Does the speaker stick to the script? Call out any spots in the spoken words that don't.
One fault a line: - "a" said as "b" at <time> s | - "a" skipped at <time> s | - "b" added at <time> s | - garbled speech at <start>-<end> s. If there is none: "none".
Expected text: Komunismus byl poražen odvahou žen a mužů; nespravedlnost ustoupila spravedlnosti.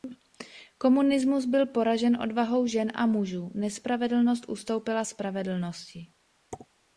none